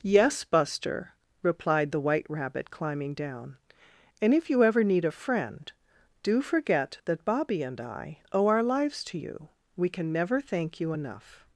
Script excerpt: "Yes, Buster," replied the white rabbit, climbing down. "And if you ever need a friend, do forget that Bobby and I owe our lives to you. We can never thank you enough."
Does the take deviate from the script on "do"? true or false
false